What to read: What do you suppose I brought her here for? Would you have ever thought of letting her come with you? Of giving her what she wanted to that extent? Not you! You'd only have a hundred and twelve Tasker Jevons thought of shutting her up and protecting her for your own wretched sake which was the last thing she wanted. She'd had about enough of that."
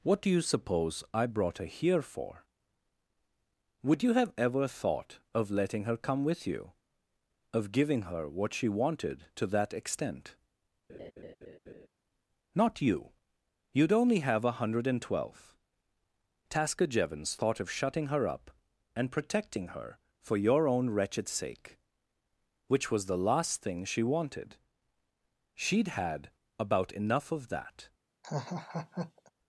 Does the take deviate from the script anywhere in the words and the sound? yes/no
yes